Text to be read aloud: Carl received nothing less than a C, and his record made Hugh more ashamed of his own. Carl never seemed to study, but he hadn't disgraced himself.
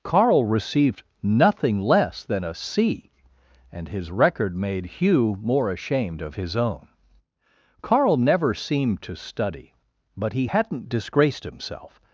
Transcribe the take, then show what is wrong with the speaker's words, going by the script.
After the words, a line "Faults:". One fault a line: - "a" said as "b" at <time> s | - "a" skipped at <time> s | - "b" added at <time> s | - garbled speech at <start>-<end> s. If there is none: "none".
Carl received nothing less than a C, and his record made Hugh more ashamed of his own. Carl never seemed to study, but he hadn't disgraced himself.
Faults:
none